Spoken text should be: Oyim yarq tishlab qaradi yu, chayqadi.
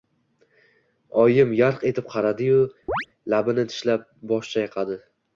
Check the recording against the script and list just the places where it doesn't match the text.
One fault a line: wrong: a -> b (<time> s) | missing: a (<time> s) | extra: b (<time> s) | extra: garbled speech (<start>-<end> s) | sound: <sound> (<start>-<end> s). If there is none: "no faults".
wrong: tishlab -> etib (1.9 s)
sound: chirp (2.9-3.1 s)
extra: labini tishlab bosh (3.4 s)